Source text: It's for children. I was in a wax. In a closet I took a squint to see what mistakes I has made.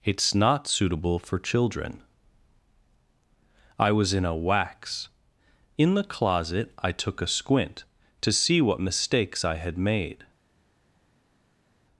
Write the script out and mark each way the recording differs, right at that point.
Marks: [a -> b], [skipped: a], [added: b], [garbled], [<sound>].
It's [added: not suitable] for children. I was in a wax. In [a -> the] closet I took a squint to see what mistakes I [has -> had] made.